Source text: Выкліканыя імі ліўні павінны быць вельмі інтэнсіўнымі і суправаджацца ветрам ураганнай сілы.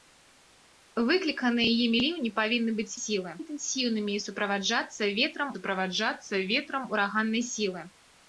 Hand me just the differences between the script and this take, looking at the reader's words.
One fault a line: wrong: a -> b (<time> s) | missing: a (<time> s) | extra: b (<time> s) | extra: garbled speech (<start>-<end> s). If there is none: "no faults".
wrong: вельмі -> сілы (3.0 s)
extra: суправаджацца ветрам (5.5 s)